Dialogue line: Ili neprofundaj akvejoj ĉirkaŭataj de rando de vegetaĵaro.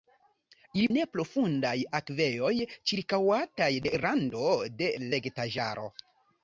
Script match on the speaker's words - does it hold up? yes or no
yes